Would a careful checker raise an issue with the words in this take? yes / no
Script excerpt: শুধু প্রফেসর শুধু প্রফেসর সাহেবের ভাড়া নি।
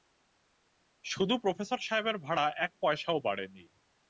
yes